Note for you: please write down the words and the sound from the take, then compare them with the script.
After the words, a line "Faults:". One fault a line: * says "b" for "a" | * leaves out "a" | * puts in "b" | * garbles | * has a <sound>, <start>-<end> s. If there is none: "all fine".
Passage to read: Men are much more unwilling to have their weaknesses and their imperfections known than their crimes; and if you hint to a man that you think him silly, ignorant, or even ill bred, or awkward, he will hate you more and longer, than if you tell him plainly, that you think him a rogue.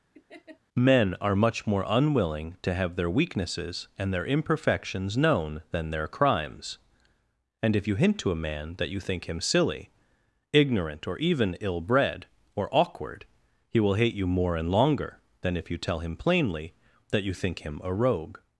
Men are much more unwilling to have their weaknesses and their imperfections known than their crimes; and if you hint to a man that you think him silly, ignorant, or even ill bred, or awkward, he will hate you more and longer, than if you tell him plainly, that you think him a rogue.
Faults:
* has a laugh, 0.1-0.6 s